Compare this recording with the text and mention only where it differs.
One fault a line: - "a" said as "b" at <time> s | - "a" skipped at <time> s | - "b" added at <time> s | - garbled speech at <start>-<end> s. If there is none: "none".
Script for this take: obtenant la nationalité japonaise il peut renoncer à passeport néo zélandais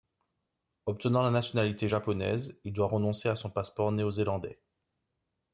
- "peut" said as "doit" at 2.7 s
- "son" added at 3.3 s